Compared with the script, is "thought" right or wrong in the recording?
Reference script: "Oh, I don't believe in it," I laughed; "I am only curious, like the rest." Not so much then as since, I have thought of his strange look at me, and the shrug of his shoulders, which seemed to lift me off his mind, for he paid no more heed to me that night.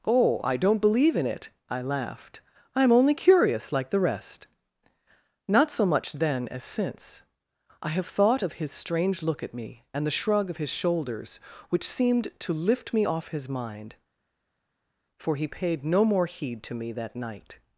right